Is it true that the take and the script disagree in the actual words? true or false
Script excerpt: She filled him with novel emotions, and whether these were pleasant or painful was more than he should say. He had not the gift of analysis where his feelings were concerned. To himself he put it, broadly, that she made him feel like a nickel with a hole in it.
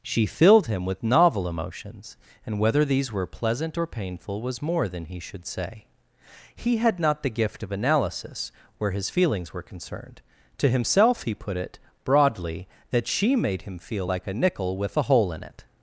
false